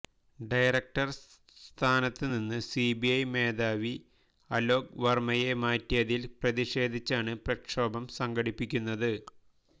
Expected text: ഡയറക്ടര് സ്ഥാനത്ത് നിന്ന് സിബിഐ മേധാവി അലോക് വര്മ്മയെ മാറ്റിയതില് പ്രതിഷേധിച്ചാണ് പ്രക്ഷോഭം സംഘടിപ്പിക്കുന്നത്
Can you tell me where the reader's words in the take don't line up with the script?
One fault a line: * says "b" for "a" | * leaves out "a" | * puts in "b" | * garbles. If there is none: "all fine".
all fine